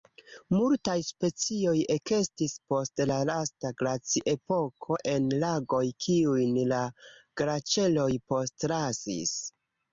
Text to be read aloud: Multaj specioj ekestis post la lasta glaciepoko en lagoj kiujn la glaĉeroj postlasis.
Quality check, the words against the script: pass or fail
pass